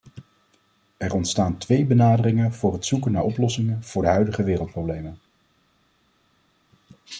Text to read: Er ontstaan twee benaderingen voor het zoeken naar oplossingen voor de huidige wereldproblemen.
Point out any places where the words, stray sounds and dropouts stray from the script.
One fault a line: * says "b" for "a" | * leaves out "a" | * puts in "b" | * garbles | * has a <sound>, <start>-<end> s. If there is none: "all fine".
all fine